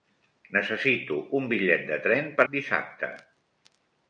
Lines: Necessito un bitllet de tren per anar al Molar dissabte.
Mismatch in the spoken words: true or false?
true